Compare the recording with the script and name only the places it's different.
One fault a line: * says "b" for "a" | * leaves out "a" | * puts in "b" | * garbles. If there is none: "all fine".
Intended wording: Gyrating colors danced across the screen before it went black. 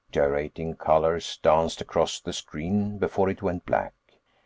all fine